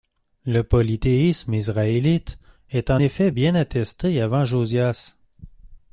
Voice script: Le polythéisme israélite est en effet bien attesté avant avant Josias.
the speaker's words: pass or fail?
fail